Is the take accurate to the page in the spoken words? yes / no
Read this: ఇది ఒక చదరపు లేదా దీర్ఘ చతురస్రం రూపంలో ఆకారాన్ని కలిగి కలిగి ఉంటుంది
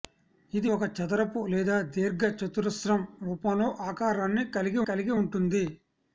yes